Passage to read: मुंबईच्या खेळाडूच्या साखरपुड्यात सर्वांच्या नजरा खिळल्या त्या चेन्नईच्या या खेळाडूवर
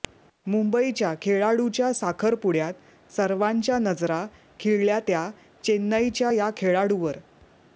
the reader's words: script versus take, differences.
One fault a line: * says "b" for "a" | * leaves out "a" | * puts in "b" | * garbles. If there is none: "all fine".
all fine